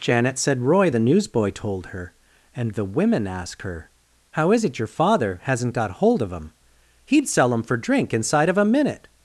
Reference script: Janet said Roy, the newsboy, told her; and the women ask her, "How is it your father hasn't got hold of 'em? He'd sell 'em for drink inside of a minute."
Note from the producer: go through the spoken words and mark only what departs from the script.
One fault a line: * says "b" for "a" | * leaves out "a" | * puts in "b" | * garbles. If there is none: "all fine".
all fine